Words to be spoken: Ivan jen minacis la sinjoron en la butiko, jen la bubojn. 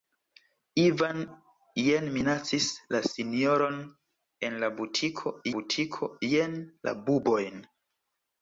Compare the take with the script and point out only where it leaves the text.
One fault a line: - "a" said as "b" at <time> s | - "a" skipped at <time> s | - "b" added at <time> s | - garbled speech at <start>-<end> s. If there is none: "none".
- "butiko" added at 5.6 s